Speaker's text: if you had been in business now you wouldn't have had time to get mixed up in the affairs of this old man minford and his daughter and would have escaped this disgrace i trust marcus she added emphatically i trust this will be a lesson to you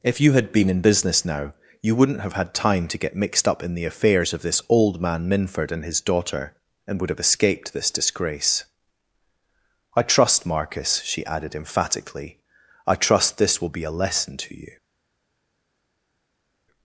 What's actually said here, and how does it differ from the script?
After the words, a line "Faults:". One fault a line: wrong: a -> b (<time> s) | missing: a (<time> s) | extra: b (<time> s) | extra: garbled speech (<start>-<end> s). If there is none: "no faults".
if you had been in business now you wouldn't have had time to get mixed up in the affairs of this old man minford and his daughter and would have escaped this disgrace i trust marcus she added emphatically i trust this will be a lesson to you
Faults:
no faults